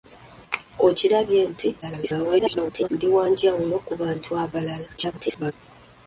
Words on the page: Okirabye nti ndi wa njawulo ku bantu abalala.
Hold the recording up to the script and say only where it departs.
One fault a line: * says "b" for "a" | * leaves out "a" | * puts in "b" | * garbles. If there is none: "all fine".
* garbles
* garbles